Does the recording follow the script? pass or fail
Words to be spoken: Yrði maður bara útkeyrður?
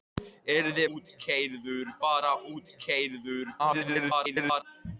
fail